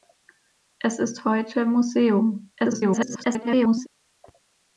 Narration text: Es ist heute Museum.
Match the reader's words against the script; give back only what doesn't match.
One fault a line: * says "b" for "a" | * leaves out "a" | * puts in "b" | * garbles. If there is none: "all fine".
* garbles